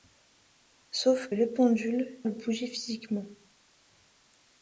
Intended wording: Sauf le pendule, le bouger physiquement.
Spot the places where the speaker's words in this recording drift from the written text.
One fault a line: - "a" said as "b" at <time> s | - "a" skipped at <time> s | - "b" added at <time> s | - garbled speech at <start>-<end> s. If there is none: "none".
none